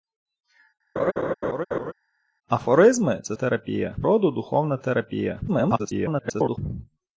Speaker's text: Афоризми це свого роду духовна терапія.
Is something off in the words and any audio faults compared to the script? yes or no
yes